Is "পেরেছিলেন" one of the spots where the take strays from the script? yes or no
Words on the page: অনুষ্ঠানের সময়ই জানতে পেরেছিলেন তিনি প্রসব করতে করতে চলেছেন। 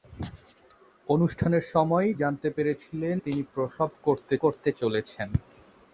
no